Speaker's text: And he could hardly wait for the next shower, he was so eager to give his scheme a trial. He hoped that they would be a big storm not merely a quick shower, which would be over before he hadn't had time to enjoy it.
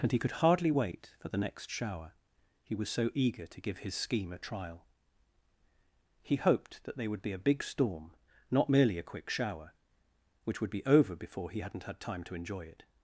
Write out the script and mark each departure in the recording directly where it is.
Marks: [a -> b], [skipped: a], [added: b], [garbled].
And he could hardly wait for the next shower, he was so eager to give his scheme a trial. He hoped that they would be a big storm not merely a quick shower, which would be over before he hadn't had time to enjoy it.